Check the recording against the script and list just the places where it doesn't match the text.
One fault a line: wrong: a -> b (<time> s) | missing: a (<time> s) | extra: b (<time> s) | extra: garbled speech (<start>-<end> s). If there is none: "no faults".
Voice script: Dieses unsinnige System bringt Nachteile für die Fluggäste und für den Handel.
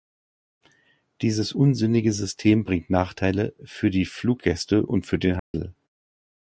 no faults